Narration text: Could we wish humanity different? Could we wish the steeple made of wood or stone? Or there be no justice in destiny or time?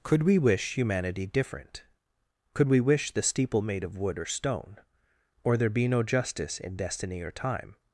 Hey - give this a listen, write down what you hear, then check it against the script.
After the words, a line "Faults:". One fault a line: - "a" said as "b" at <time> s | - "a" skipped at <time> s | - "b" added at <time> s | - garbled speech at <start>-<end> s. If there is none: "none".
Could we wish humanity different? Could we wish the steeple made of wood or stone? Or there be no justice in destiny or time?
Faults:
none